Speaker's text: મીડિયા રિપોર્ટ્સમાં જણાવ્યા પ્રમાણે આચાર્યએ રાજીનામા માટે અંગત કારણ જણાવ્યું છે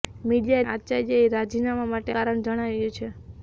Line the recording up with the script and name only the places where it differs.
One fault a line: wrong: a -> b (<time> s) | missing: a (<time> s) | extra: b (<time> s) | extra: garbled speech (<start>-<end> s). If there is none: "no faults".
missing: રિપોર્ટ્સમાં જણાવ્યા પ્રમાણે (0.7 s)
missing: અંગત (2.2 s)